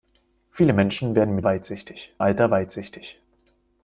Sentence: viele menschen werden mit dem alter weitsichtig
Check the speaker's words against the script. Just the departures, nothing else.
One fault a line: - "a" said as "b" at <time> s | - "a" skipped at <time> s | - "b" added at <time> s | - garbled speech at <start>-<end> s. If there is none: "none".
- "dem" said as "weitsichtig" at 1.4 s